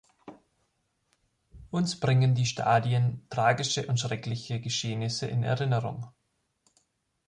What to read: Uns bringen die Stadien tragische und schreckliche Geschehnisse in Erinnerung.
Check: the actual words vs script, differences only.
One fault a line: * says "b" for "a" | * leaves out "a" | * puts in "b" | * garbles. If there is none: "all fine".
all fine